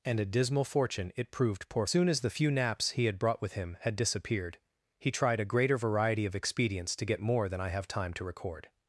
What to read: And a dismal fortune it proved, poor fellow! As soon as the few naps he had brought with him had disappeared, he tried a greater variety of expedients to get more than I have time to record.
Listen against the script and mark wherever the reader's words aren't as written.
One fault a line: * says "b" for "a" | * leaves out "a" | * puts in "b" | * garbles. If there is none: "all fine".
* leaves out "fellow As"